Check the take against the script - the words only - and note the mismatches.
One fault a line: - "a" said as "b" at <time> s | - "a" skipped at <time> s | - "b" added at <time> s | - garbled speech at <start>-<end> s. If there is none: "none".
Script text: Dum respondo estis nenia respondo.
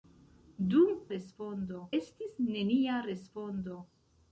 none